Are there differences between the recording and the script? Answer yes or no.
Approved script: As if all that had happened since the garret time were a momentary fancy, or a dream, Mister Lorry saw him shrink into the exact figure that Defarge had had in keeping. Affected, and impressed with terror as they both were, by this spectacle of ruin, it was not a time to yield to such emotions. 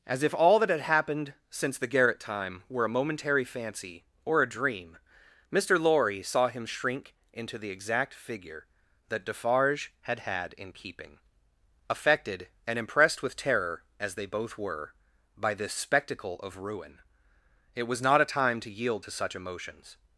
no